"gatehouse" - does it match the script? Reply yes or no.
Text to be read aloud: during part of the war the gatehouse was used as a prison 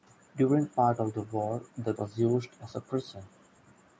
no